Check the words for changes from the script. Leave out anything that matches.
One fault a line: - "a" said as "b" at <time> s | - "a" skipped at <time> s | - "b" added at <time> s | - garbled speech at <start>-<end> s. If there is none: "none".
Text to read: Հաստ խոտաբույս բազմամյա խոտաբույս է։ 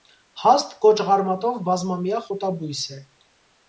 - "խոտաբույս" said as "կոճղարմատով" at 0.8 s